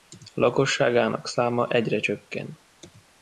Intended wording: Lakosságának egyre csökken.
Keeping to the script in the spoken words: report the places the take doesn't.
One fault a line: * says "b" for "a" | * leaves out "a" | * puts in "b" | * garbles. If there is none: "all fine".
* puts in "száma"